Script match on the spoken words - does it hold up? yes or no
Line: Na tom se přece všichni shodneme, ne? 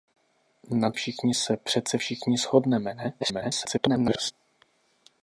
no